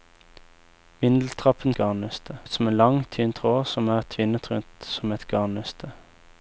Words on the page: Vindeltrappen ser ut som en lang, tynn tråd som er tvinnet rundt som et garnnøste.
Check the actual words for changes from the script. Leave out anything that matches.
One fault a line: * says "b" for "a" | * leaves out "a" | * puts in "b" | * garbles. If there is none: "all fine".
* says "garnnøste" for "ser"